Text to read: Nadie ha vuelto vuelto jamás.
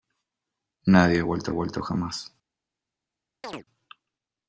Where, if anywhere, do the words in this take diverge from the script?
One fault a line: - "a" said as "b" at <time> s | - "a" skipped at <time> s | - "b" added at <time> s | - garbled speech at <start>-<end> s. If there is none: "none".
none